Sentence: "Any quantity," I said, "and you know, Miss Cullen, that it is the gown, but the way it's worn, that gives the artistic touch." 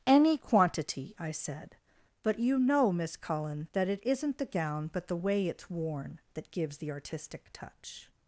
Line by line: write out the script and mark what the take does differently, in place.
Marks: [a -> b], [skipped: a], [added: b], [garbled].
"Any quantity," I said, ["and -> but] you know, Miss Cullen, that it [is -> isn't] the gown, but the way it's worn, that gives the artistic touch."